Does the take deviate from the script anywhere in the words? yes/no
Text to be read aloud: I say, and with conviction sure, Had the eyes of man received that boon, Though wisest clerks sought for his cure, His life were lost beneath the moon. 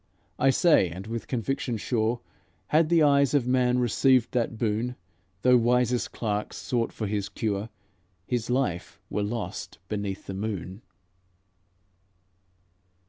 no